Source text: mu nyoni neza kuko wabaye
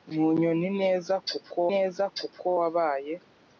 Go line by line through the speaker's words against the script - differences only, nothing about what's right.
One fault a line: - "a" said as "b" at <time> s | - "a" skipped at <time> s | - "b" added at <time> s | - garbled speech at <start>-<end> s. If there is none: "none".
- "neza kuko" added at 1.7 s